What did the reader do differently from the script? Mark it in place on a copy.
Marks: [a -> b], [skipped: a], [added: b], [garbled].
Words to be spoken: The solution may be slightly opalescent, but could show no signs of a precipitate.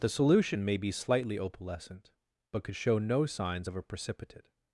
The solution may be slightly opalescent, but could show no signs of a precipitate.